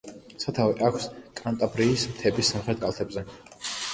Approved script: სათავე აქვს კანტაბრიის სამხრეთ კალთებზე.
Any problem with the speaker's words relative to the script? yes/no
yes